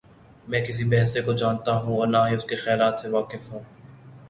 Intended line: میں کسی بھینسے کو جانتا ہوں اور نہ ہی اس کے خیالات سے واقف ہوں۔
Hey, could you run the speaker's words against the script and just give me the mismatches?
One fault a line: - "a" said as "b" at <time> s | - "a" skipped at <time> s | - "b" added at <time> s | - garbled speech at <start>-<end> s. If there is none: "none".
none